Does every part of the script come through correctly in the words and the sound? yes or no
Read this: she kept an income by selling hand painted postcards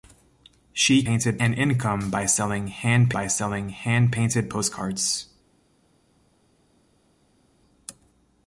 no